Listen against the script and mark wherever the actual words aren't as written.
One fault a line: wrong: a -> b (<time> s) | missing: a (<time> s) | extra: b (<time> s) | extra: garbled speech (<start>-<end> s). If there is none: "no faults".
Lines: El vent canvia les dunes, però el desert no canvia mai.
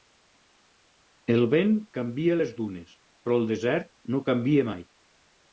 no faults